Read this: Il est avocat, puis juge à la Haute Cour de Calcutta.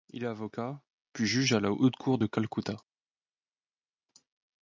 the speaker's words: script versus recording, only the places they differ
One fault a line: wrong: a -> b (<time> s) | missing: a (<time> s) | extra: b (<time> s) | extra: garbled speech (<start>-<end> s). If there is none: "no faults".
no faults